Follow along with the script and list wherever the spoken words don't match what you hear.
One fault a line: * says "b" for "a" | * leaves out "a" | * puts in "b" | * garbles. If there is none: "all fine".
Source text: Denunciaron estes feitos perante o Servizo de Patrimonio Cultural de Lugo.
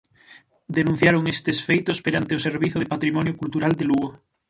all fine